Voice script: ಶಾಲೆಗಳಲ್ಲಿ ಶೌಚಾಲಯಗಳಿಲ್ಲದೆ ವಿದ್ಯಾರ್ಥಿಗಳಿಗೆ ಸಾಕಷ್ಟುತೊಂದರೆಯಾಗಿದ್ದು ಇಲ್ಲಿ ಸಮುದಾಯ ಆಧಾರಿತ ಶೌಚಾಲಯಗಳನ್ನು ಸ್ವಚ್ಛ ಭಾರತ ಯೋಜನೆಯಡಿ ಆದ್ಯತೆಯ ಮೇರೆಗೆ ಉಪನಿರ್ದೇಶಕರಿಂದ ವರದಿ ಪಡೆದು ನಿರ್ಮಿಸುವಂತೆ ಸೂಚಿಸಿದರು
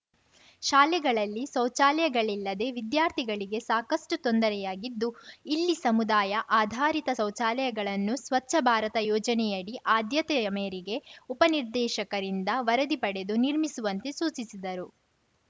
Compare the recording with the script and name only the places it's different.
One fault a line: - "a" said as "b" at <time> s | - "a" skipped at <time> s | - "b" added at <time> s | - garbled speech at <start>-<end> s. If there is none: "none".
none